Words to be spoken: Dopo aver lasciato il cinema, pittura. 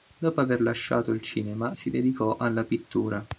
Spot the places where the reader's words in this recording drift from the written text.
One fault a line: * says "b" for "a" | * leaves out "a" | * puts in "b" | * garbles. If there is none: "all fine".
* puts in "si dedicò alla"